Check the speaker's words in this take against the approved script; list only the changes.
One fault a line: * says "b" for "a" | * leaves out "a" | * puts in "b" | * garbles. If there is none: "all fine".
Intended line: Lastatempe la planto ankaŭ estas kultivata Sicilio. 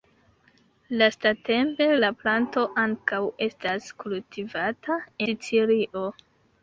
all fine